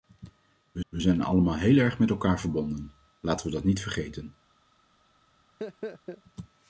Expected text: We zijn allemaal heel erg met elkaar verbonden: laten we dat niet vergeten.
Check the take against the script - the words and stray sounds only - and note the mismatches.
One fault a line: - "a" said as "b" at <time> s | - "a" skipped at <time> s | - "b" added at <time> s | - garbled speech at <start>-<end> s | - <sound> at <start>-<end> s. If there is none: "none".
- "we" added at 0.9 s
- laugh at 5.6-6.2 s